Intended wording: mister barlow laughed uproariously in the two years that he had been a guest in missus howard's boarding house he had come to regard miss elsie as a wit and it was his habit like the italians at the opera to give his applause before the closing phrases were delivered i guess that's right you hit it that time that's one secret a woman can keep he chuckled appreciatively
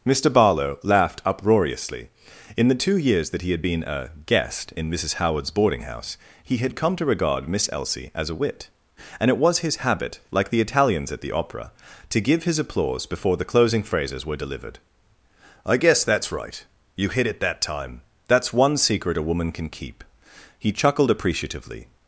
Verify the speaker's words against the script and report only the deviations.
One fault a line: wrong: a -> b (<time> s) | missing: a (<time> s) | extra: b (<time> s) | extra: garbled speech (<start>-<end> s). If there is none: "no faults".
no faults